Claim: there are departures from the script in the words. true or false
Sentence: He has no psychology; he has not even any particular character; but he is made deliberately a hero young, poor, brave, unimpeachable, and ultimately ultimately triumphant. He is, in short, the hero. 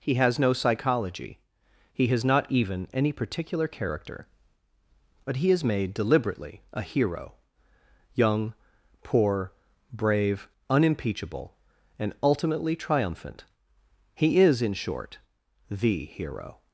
true